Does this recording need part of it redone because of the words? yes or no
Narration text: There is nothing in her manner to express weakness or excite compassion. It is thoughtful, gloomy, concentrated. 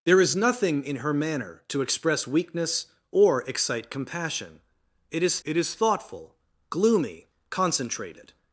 yes